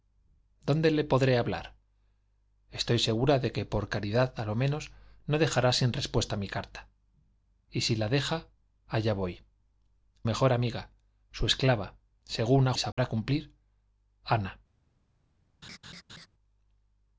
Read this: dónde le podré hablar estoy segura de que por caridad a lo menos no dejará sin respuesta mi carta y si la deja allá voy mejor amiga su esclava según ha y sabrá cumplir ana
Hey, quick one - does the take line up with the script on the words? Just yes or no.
yes